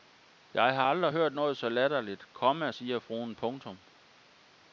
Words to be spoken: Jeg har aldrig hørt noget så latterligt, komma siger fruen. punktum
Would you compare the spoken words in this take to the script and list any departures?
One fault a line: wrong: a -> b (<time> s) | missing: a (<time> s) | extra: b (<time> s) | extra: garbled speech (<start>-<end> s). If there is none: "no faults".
no faults